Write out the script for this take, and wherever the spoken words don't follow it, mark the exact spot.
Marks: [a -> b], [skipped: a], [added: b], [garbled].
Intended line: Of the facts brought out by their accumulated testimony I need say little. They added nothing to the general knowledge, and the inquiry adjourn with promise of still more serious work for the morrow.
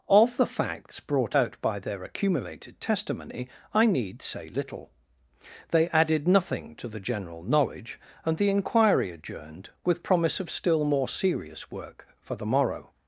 Of the facts brought out by their accumulated testimony I need say little. They added nothing to the general knowledge, and the inquiry [adjourn -> adjourned] with promise of still more serious work for the morrow.